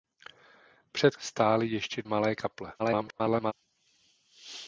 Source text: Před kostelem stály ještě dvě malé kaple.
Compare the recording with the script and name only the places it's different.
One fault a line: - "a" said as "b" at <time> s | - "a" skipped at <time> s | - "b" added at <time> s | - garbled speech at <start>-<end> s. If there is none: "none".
- "kostelem" skipped at 1.1 s
- "dvě" skipped at 2.0 s
- garbled speech at 2.8-3.5 s